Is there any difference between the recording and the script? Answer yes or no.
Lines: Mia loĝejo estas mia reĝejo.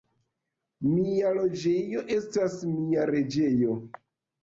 no